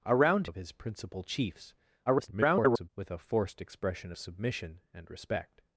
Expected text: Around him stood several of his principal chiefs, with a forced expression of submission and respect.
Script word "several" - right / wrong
wrong